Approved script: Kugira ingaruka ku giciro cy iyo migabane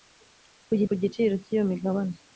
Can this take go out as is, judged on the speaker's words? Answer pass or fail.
fail